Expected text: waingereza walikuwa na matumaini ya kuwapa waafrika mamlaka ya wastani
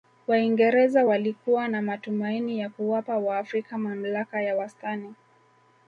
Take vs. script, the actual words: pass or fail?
pass